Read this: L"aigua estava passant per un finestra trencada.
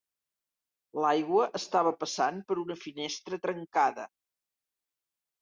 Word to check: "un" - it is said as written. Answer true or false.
false